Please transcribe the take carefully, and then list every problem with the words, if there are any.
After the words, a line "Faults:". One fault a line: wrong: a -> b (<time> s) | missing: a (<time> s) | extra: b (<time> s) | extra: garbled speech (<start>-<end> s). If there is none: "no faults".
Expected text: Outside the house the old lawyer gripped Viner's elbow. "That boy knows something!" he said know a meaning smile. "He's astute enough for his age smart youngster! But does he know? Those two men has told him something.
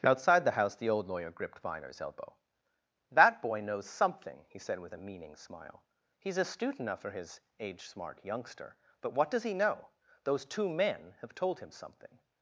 Outside the house the old lawyer gripped Viner's elbow. "That boy knows something!" he said with a meaning smile. "He's astute enough for his age smart youngster! But what does he know? Those two men have told him something.
Faults:
wrong: know -> with (4.8 s)
extra: what (9.1 s)
wrong: has -> have (11.2 s)